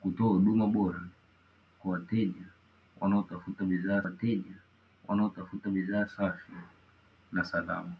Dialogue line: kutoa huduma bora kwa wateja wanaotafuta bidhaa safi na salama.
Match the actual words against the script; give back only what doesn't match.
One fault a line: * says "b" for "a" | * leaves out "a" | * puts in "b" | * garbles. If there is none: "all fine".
* puts in "wateja wanaotafuta bidhaa"